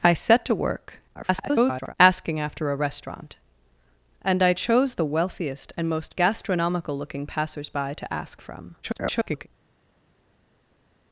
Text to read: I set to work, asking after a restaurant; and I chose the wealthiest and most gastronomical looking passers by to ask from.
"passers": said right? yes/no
yes